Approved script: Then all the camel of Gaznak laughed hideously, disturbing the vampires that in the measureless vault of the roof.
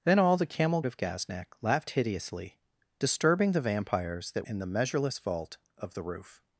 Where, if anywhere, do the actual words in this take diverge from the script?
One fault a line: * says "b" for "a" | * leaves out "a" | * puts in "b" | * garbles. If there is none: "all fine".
all fine